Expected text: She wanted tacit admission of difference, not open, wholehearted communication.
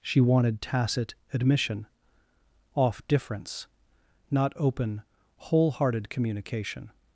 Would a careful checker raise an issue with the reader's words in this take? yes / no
yes